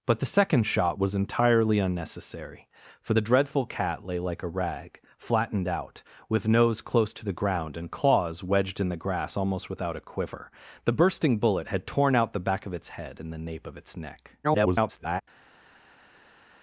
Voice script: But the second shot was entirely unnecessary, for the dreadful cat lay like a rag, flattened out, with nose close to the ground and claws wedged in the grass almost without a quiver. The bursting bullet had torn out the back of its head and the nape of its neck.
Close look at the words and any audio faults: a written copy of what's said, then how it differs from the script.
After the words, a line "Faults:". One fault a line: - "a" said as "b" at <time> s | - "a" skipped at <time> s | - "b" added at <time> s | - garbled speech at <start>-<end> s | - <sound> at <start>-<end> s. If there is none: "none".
But the second shot was entirely unnecessary, for the dreadful cat lay like a rag, flattened out, with nose close to the ground and claws wedged in the grass almost without a quiver. The bursting bullet had torn out the back of its head and the nape of its neck. [garbled]
Faults:
- garbled speech at 14.4-15.2 s